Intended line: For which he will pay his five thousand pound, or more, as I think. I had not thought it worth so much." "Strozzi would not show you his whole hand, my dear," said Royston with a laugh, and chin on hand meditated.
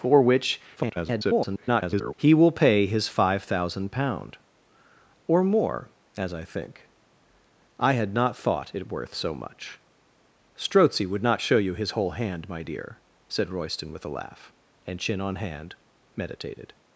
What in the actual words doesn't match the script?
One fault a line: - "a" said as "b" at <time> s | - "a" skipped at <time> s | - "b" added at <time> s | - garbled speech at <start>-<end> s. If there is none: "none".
- garbled speech at 0.8-2.1 s